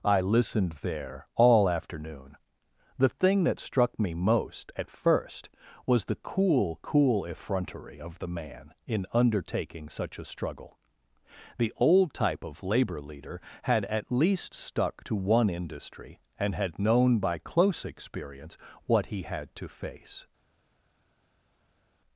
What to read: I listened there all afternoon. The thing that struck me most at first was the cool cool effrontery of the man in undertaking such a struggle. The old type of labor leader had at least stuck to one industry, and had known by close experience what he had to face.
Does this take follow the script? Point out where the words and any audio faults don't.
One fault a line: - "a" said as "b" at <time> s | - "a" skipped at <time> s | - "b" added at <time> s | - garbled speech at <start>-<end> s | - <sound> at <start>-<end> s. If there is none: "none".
none